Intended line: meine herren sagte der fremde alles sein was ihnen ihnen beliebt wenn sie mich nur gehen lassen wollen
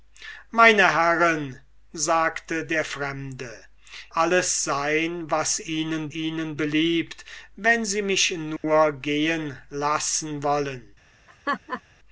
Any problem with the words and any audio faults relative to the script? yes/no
yes